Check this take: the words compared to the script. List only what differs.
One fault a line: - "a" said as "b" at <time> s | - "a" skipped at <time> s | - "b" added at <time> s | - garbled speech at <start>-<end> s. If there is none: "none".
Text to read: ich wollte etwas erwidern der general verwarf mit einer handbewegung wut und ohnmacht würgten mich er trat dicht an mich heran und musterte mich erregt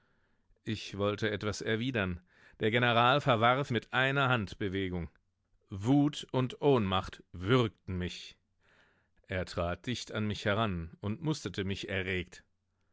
none